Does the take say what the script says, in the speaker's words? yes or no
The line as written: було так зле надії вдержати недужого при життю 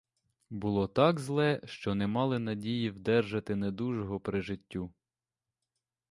no